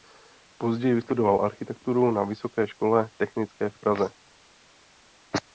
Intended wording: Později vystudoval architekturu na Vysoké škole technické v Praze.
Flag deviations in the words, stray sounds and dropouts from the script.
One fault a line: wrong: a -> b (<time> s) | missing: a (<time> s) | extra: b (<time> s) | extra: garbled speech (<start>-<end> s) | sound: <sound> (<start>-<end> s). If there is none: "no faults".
no faults